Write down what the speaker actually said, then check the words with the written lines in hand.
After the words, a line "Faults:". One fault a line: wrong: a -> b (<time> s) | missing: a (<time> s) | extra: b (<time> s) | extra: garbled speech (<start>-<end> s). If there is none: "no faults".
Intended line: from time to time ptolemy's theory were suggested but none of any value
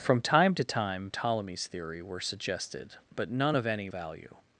from time to time ptolemy's theory were suggested but none of any value
Faults:
no faults